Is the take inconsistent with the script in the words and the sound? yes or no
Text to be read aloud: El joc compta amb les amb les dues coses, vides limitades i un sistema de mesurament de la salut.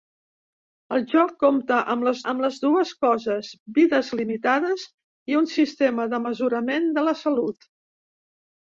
no